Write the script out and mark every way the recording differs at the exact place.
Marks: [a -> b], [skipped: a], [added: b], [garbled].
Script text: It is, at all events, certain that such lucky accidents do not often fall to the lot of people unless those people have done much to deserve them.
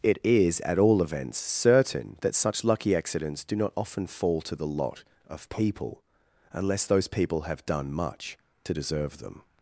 It is, at all events, certain that such lucky accidents do not often fall to the lot of people unless those people have done much to deserve them.